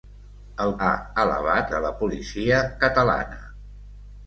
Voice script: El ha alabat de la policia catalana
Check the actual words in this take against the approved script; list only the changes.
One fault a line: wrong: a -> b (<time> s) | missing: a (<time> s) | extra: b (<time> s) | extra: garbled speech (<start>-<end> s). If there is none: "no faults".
no faults